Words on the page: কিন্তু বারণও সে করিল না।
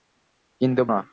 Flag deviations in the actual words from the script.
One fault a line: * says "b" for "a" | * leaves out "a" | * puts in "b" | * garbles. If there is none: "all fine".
* leaves out "বারণও সে করিল"